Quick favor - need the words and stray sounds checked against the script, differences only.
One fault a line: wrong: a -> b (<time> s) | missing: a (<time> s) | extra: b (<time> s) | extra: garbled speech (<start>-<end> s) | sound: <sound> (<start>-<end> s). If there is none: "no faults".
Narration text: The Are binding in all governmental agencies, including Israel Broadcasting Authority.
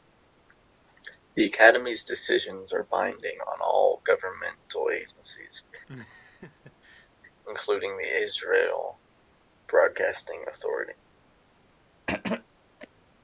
extra: Academy's decisions (1.4 s)
wrong: in -> on (3.5 s)
sound: laugh (5.9-7.1 s)
extra: the (8.0 s)
sound: throat clearing (12.1-12.5 s)